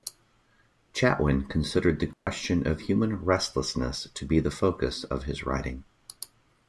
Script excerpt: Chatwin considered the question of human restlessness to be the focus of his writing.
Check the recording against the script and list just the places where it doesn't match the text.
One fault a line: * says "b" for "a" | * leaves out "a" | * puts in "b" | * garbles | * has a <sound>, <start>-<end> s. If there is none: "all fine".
* has a dropout, 2.1-2.3 s